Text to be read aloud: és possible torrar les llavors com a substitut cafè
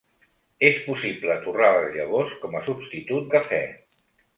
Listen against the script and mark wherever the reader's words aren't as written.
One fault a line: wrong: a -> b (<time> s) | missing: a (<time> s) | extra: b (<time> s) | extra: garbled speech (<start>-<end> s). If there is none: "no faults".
no faults